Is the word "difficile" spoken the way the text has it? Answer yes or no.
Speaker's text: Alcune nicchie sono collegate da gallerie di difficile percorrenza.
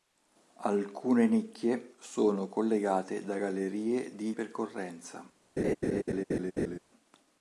no